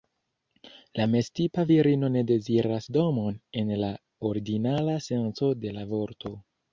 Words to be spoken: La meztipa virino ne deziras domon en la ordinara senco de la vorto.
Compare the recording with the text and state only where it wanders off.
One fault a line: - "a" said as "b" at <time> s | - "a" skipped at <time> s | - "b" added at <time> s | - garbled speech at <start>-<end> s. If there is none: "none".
none